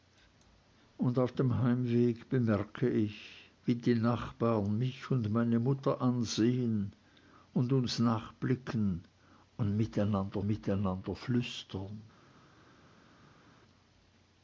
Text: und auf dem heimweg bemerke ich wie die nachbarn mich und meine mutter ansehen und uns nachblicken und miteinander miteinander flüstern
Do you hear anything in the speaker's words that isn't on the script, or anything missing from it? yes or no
no